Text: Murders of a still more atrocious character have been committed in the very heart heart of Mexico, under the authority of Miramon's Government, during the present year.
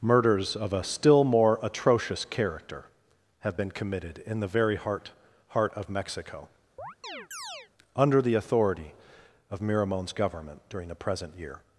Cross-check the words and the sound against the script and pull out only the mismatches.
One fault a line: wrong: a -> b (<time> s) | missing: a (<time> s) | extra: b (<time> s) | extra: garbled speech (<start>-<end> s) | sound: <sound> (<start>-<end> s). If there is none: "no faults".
sound: chirp (6.8-7.7 s)